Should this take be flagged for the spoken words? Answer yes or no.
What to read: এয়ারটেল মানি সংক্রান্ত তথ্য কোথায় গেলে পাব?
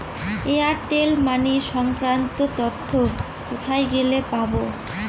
no